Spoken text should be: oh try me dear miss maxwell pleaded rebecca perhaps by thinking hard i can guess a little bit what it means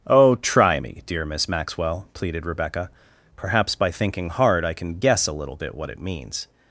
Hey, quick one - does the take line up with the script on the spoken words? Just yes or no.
yes